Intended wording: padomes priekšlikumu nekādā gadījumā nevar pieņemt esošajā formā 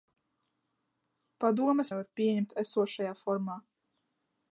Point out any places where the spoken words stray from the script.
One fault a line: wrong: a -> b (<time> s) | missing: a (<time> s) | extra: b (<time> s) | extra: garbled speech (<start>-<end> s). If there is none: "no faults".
missing: priekšlikumu nekādā gadījumā (1.9 s)